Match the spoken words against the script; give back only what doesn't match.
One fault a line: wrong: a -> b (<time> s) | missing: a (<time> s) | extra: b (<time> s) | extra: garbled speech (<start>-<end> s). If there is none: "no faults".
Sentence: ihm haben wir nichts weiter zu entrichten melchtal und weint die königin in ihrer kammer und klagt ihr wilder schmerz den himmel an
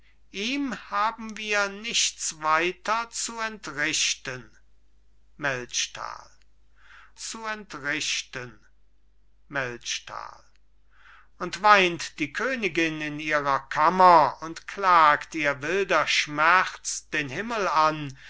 extra: zu entrichten melchtal (7.2 s)